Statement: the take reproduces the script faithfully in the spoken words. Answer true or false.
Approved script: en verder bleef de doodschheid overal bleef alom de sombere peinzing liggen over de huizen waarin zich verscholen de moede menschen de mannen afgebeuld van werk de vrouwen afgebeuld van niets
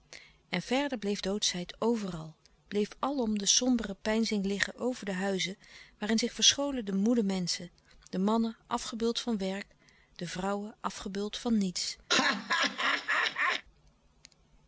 false